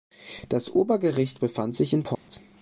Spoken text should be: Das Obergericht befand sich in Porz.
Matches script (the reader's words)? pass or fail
pass